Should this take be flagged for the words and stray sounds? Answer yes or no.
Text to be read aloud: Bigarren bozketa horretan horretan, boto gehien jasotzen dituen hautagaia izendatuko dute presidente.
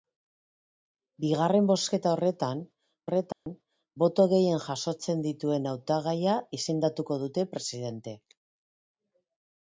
yes